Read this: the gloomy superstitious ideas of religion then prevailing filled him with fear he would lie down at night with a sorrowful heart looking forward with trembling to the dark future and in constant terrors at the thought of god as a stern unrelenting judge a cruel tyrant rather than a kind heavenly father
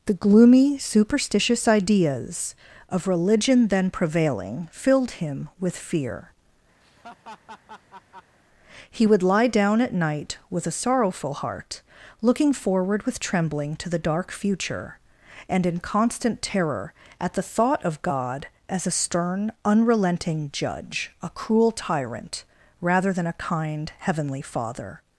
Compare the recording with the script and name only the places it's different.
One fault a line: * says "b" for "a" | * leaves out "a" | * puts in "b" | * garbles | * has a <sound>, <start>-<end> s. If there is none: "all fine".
* has a laugh, 6.8-8.4 s
* says "terror" for "terrors"